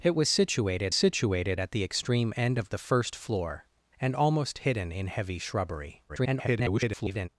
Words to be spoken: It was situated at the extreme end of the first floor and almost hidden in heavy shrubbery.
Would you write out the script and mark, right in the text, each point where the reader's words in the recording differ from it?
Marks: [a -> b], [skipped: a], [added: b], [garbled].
It was situated [added: situated] at the extreme end of the first floor and almost hidden in heavy shrubbery. [garbled]